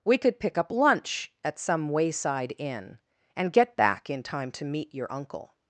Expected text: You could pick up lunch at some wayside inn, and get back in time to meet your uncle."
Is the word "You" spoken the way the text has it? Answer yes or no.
no